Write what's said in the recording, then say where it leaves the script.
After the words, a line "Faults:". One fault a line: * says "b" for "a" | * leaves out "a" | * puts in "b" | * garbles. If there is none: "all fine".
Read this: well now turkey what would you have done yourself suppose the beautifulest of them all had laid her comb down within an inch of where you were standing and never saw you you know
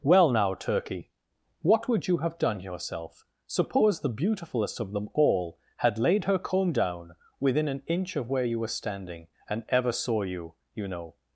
well now turkey what would you have done yourself suppose the beautifulest of them all had laid her comb down within an inch of where you were standing and ever saw you you know
Faults:
* says "ever" for "never"